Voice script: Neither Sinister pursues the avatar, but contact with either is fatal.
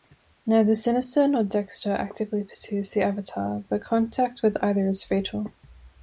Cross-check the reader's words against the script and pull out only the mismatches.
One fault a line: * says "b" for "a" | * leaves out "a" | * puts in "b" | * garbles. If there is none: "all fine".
* puts in "nor Dexter actively"